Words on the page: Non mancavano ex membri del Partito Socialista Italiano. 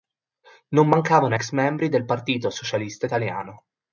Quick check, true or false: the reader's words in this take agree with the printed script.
true